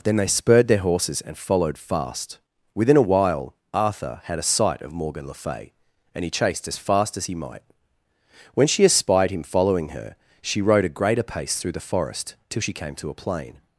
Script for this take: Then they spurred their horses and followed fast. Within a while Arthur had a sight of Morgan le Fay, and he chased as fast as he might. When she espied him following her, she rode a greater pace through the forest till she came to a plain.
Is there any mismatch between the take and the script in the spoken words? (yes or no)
no